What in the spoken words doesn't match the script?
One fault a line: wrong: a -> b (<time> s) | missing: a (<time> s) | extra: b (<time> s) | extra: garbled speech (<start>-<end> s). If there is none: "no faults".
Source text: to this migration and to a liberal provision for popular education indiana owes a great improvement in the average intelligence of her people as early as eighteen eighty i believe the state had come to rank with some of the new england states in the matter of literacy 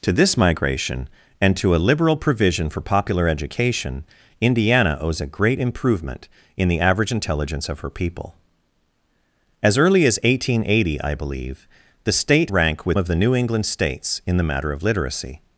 missing: had come to (12.5 s)
missing: some (13.0 s)